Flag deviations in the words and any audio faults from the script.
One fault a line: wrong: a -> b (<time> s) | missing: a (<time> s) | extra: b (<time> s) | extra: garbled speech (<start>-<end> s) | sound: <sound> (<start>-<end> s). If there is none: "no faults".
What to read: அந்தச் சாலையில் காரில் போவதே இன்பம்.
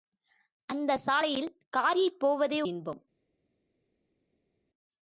no faults